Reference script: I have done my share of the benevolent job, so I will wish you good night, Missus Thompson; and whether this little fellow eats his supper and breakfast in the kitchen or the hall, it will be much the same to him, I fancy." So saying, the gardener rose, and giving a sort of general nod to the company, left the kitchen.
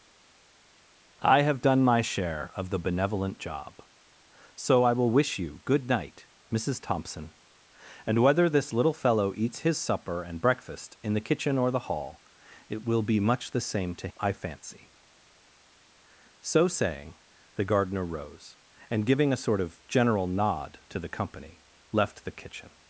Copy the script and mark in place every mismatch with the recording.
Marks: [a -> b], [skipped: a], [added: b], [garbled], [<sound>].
I have done my share of the benevolent job, so I will wish you good night, Missus Thompson; and whether this little fellow eats his supper and breakfast in the kitchen or the hall, it will be much the same to [skipped: him,] I fancy." So saying, the gardener rose, and giving a sort of general nod to the company, left the kitchen.